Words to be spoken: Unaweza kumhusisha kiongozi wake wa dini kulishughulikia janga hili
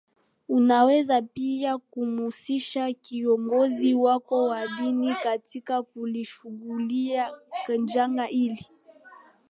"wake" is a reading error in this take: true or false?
true